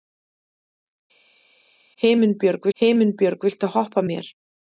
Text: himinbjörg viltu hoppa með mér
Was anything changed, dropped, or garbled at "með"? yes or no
yes